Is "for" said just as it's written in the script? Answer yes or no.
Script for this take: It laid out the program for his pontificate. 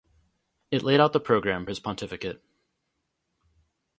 no